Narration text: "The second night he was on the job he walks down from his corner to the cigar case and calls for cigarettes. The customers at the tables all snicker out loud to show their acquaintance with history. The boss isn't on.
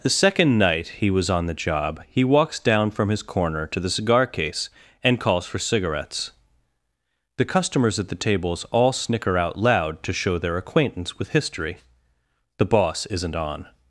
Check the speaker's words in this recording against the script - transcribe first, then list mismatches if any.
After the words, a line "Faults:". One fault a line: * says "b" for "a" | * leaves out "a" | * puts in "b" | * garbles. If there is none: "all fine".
"The second night he was on the job he walks down from his corner to the cigar case and calls for cigarettes. The customers at the tables all snicker out loud to show their acquaintance with history. The boss isn't on.
Faults:
all fine